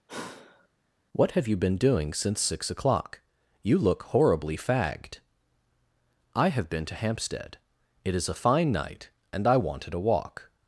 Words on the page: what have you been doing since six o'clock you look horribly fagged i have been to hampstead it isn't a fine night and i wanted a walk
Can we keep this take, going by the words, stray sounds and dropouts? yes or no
no